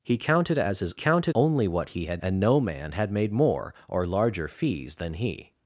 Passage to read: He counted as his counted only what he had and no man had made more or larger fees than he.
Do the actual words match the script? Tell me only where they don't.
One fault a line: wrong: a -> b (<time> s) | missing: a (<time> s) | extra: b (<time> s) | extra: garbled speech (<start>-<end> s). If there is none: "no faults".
no faults